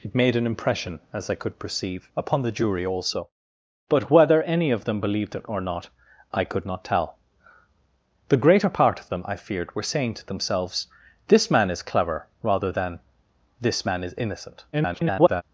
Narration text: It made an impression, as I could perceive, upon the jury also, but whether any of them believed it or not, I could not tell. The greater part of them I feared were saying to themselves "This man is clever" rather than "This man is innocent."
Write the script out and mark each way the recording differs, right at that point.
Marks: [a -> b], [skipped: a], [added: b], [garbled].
It made an impression, as I could perceive, upon the jury also, but whether any of them believed it or not, I could not tell. The greater part of them I feared were saying to themselves "This man is clever" rather than "This man is innocent." [garbled]